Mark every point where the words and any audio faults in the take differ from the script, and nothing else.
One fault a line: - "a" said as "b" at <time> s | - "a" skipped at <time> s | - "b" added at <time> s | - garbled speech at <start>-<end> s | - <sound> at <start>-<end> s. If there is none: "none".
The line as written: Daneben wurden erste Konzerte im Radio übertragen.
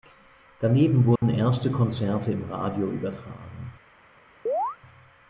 - dropout at 1.2-1.2 s
- chirp at 4.5-4.8 s